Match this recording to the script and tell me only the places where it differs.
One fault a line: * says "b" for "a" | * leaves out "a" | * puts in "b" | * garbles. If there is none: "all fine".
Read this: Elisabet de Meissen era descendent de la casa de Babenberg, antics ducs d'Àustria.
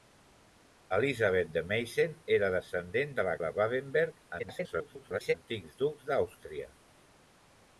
* leaves out "casa"
* garbles